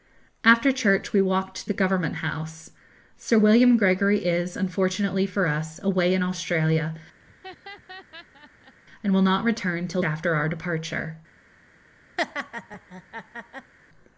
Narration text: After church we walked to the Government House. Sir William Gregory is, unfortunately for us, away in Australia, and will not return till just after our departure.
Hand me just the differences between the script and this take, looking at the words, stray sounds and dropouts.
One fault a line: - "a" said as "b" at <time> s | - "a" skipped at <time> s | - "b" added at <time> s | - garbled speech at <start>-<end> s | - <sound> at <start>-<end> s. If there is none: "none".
- "to" skipped at 1.7 s
- laugh at 7.2-8.7 s
- "just" skipped at 10.0 s
- laugh at 12.2-13.7 s